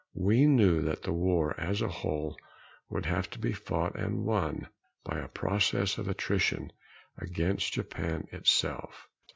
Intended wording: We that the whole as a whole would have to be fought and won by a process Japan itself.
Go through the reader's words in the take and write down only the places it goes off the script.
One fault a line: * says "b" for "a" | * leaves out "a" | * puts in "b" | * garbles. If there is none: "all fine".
* puts in "knew"
* says "war" for "whole"
* puts in "of attrition against"